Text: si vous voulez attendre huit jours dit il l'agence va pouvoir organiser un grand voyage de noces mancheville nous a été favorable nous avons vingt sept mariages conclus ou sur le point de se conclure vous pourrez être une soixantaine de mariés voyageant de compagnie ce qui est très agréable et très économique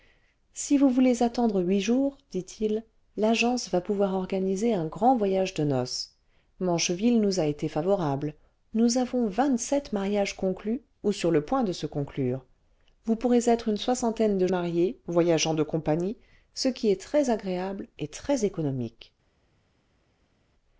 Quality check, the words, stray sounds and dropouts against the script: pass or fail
pass